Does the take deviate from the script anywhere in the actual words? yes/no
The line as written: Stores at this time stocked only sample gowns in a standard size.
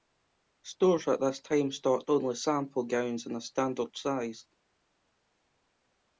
no